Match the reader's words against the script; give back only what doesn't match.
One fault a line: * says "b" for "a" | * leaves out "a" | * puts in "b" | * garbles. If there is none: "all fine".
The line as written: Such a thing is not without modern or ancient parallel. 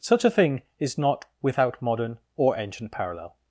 all fine